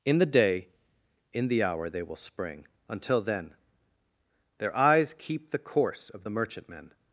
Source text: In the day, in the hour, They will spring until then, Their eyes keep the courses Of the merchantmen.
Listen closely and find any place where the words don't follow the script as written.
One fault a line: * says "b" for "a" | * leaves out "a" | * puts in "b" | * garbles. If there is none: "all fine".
* says "course" for "courses"